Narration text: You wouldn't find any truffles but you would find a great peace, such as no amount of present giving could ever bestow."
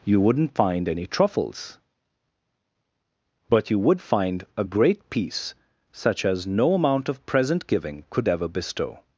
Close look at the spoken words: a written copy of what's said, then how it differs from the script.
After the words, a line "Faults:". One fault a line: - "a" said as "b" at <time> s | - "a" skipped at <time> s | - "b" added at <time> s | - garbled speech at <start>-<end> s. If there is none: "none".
You wouldn't find any truffles but you would find a great peace, such as no amount of present giving could ever bestow."
Faults:
none